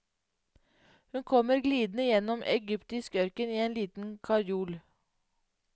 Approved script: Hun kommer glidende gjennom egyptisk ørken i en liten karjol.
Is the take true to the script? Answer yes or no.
yes